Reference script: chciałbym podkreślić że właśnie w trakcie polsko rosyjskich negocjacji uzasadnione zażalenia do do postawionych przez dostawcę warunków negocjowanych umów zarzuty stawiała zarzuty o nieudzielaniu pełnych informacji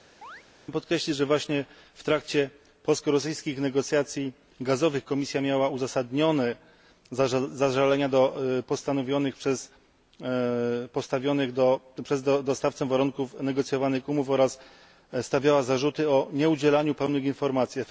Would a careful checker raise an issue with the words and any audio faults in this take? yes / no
yes